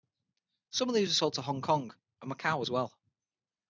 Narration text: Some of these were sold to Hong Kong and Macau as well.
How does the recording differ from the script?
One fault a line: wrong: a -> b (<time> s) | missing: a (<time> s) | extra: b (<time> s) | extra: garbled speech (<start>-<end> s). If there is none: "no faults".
no faults